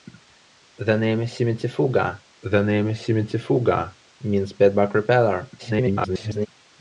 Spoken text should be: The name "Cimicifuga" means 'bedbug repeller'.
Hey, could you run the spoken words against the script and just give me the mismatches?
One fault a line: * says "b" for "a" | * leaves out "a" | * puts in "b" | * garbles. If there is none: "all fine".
* puts in "the name Cimicifuga"
* garbles